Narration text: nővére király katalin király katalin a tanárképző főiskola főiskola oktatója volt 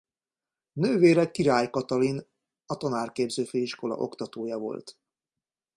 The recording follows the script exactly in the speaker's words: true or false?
false